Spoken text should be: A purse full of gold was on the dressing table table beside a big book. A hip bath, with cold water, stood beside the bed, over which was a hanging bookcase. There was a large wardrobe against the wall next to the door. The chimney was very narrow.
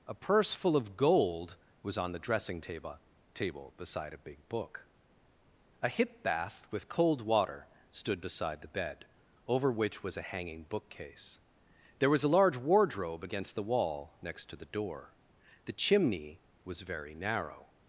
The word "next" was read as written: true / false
true